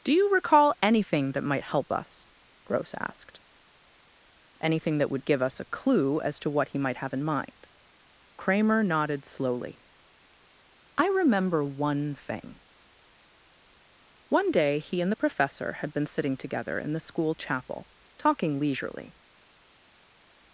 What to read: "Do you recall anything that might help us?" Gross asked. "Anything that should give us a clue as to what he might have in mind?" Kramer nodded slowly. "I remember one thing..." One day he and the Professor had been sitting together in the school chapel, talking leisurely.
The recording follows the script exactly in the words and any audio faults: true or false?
false